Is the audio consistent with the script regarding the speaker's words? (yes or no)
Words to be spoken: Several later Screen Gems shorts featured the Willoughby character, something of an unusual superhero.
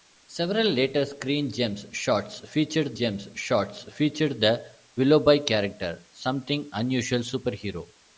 no